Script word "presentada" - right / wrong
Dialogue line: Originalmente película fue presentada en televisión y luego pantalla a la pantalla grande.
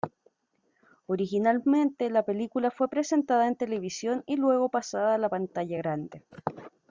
right